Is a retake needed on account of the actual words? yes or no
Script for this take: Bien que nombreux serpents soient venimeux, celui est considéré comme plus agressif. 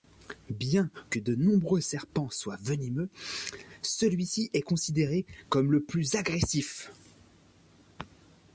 yes